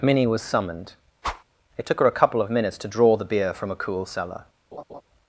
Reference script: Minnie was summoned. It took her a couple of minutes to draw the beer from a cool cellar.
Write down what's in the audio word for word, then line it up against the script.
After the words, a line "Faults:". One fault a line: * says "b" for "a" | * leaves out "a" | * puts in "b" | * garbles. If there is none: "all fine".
Minnie was summoned. It took her a couple of minutes to draw the beer from a cool cellar.
Faults:
all fine